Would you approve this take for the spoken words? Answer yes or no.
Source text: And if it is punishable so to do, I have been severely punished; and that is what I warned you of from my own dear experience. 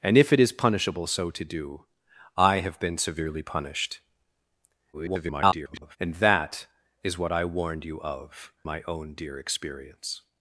no